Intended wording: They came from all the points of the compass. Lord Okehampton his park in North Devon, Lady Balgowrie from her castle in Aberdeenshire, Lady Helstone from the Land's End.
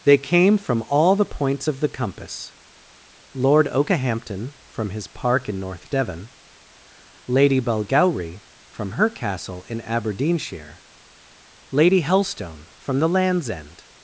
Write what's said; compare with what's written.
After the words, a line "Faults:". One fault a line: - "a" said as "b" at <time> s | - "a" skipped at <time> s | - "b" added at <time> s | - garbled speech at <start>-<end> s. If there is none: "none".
They came from all the points of the compass. Lord Okehampton from his park in North Devon, Lady Balgowrie from her castle in Aberdeenshire, Lady Helstone from the Land's End.
Faults:
- "from" added at 4.7 s